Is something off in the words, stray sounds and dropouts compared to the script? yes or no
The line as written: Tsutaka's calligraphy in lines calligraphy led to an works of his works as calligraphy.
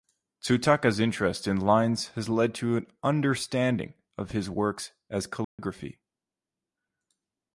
yes